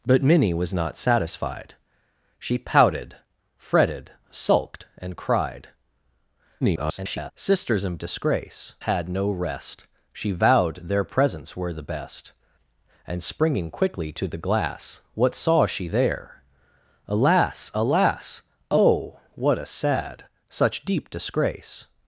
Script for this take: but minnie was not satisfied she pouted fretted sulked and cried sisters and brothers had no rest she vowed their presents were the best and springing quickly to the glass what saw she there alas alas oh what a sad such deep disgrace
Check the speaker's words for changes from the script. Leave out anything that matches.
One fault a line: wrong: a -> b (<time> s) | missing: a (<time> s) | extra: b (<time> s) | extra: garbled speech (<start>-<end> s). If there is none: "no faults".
extra: garbled speech (6.6-7.3 s)
wrong: brothers -> disgrace (8.0 s)